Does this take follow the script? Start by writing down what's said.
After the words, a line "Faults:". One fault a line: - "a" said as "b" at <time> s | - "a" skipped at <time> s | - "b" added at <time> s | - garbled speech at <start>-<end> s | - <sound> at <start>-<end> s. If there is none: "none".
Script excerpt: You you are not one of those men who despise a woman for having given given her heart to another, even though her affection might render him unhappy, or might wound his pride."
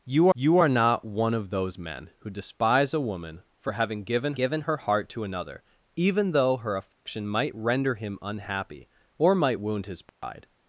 You you are not one of those men who despise a woman for having given given her heart to another, even though her affection might render him unhappy, or might wound his pride."
Faults:
- dropout at 6.9-7.1 s
- dropout at 10.1-10.2 s